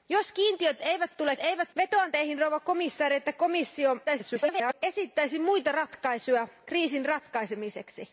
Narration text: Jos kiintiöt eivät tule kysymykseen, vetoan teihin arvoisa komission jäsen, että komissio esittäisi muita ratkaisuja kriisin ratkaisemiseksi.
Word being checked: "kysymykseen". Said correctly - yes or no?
no